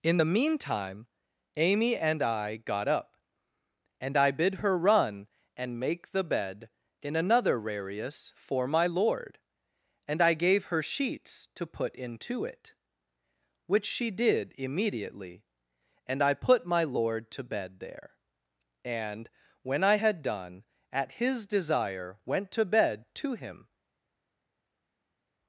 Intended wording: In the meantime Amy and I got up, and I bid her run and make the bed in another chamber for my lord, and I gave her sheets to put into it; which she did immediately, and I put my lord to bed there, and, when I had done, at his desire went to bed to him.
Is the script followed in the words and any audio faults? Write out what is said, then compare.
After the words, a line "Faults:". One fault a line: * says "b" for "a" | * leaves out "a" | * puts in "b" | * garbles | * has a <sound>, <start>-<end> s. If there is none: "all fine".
In the meantime Amy and I got up, and I bid her run and make the bed in another rarius for my lord, and I gave her sheets to put into it; which she did immediately, and I put my lord to bed there, and, when I had done, at his desire went to bed to him.
Faults:
* says "rarius" for "chamber"